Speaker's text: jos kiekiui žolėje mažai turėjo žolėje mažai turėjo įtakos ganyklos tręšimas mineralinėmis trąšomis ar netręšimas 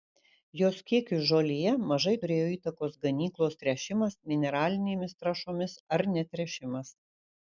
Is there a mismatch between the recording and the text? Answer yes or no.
yes